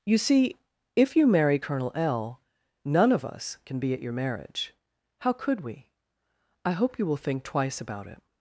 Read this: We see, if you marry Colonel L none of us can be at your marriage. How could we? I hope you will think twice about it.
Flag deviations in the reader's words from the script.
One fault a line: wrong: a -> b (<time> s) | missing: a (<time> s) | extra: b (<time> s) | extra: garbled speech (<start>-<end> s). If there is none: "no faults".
wrong: We -> You (0.1 s)